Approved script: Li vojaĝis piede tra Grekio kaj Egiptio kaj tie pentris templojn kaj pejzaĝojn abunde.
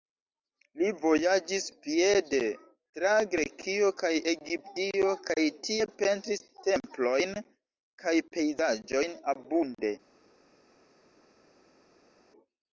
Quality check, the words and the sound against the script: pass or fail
pass